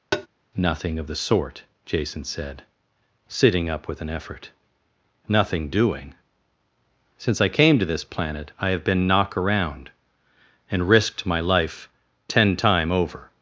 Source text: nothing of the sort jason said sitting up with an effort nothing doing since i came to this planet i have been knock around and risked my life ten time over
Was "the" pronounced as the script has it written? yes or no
yes